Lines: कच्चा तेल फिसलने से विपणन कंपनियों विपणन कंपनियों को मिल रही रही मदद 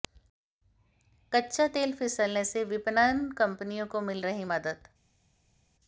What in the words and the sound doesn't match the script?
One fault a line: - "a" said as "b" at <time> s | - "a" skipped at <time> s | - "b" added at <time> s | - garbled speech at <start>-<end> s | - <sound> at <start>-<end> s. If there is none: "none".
- "विपणन कंपनियों" skipped at 3.9 s
- "रही" skipped at 4.5 s